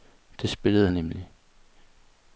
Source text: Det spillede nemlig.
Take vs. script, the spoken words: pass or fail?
pass